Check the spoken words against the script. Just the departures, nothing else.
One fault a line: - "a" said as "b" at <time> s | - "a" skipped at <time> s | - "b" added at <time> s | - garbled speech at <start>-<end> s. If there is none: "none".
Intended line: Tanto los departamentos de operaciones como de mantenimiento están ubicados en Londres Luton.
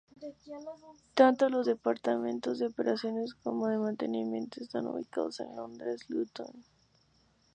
none